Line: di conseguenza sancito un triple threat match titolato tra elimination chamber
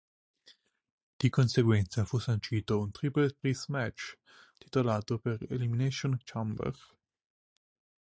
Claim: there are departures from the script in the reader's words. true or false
true